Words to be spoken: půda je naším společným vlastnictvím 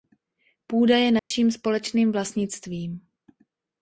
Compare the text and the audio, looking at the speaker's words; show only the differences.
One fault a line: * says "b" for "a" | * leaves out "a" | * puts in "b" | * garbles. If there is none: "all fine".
all fine